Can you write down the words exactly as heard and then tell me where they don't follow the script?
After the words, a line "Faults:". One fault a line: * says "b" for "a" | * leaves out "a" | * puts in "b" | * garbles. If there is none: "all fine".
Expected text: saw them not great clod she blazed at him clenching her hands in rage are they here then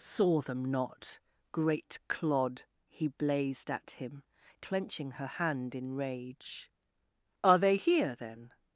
saw them not great clod he blazed at him clenching her hand in rage are they here then
Faults:
* says "he" for "she"
* says "hand" for "hands"